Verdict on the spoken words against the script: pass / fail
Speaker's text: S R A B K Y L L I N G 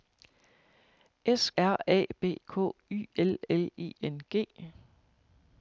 pass